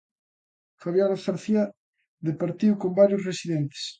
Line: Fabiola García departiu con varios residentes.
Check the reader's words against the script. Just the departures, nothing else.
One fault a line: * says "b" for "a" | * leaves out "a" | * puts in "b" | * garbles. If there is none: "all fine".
all fine